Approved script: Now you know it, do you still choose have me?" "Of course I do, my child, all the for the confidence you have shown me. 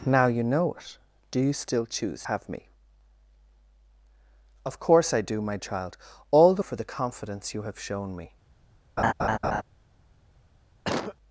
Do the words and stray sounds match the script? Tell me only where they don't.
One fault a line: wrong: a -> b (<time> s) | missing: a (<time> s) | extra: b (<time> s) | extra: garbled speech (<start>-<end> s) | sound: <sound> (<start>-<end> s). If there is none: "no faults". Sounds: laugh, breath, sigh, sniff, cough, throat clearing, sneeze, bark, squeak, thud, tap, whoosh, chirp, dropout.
sound: laugh (9.0-9.6 s)
sound: cough (10.8-11.2 s)